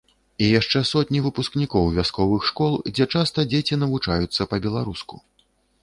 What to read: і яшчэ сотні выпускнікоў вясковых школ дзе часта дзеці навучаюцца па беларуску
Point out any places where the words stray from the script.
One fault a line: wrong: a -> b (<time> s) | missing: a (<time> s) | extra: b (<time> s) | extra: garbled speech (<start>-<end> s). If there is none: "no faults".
no faults